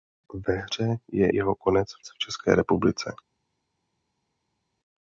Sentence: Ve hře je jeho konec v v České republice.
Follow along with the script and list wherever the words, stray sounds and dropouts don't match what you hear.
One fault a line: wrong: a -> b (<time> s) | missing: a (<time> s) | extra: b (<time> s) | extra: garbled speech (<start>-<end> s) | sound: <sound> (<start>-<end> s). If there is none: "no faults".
no faults